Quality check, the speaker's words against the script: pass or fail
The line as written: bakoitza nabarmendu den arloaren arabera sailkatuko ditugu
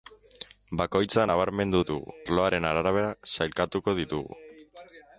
fail